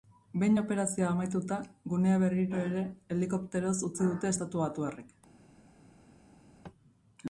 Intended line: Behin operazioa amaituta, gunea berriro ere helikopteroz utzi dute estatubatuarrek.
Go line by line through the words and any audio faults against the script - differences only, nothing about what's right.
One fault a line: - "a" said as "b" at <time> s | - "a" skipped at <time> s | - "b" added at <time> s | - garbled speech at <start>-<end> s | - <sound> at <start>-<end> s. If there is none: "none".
none